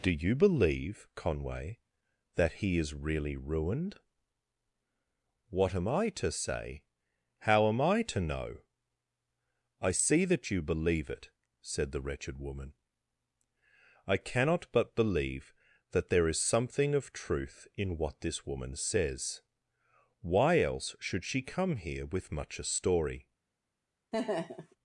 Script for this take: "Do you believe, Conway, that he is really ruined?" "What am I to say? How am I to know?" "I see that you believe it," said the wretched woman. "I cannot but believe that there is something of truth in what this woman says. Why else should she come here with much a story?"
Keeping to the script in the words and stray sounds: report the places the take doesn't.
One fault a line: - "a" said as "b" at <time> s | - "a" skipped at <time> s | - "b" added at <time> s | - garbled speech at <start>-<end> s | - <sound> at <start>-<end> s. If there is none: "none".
- laugh at 24.1-24.8 s